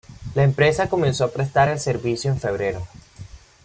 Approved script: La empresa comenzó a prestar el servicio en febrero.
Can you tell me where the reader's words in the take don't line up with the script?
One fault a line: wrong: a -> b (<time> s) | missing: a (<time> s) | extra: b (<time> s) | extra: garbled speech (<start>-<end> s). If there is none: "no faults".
no faults